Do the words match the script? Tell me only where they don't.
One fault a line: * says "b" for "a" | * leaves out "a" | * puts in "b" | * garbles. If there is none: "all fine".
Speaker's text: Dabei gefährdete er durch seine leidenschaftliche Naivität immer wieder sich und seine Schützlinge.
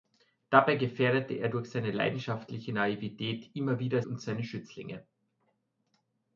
* leaves out "sich"